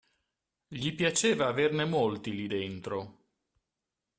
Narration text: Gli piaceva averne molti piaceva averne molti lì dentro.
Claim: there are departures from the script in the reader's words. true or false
true